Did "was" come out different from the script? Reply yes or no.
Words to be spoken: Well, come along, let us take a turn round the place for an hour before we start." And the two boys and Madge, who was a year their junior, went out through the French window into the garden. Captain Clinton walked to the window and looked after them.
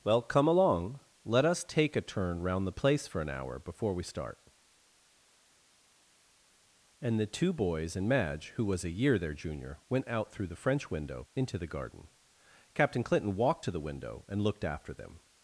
no